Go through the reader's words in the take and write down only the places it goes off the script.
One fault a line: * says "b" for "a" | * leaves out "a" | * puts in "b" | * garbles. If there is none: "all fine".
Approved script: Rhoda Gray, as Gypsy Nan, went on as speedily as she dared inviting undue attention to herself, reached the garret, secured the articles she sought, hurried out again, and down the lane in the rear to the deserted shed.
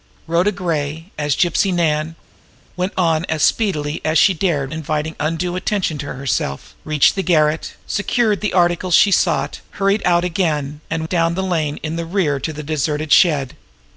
all fine